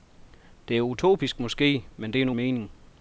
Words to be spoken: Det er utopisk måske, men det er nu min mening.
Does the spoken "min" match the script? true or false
false